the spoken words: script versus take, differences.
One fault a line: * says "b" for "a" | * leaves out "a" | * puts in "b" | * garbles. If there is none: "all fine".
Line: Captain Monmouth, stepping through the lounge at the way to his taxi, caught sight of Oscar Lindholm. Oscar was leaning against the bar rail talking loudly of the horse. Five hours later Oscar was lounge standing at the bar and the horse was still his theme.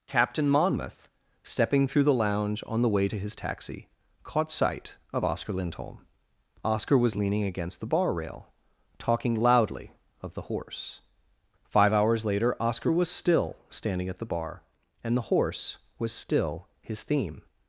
* says "on" for "at"
* says "still" for "lounge"